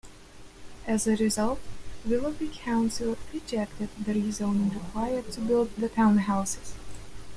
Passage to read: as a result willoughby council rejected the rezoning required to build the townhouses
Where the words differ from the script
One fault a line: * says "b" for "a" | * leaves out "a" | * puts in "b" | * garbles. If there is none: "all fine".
all fine